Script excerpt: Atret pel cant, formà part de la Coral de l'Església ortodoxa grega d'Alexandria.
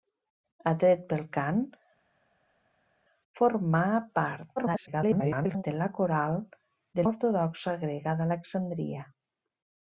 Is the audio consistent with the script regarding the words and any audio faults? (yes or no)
no